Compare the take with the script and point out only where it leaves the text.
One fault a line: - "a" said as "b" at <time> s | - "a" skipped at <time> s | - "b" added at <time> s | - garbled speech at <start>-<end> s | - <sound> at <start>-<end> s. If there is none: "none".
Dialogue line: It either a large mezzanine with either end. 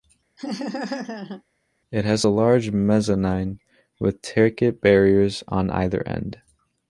- laugh at 0.4-1.4 s
- "either" said as "has" at 2.0 s
- "ticket barriers on" added at 4.2 s